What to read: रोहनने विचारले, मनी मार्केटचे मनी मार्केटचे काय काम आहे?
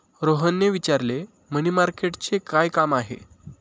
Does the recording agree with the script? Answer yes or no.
no